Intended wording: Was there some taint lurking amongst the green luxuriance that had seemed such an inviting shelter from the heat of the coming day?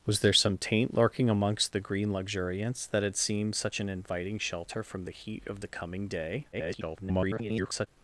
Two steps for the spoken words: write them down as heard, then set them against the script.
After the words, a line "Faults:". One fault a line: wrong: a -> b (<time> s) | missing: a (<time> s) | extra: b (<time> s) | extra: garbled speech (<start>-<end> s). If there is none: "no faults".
Was there some taint lurking amongst the green luxuriance that had seemed such an inviting shelter from the heat of the coming day? [garbled]
Faults:
extra: garbled speech (6.5-7.9 s)